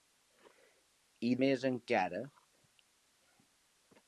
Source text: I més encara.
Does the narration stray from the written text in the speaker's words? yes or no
no